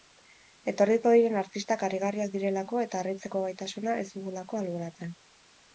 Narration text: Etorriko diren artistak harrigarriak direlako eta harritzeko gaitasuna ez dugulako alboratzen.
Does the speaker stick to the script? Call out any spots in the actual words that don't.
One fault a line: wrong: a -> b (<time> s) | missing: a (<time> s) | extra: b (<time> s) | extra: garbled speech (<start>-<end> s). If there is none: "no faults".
no faults